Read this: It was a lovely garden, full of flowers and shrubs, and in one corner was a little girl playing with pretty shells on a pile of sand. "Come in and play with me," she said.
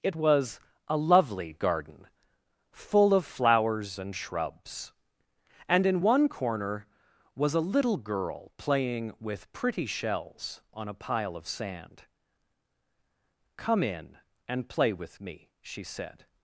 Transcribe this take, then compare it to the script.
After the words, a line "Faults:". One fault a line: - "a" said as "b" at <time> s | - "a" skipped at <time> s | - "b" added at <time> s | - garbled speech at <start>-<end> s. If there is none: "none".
It was a lovely garden, full of flowers and shrubs, and in one corner was a little girl playing with pretty shells on a pile of sand. "Come in and play with me," she said.
Faults:
none